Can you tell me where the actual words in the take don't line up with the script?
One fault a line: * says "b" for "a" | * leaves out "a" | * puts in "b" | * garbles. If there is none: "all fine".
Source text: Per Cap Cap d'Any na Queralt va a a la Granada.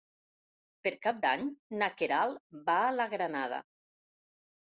* leaves out "Cap"
* leaves out "a"